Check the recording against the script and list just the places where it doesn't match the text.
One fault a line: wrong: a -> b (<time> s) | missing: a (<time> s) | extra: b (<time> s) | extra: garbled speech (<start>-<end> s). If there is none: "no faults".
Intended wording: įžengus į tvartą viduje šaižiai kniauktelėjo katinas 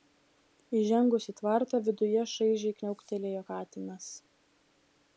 no faults